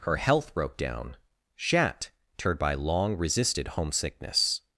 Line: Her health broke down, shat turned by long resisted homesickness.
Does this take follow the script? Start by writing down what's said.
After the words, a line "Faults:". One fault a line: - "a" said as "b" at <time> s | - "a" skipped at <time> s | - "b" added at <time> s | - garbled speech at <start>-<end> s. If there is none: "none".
Her health broke down, shat turned by long resisted homesickness.
Faults:
none